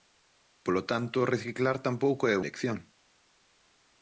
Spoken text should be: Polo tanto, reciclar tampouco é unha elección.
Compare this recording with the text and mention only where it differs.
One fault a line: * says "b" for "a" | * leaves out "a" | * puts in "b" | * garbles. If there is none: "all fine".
* leaves out "unha"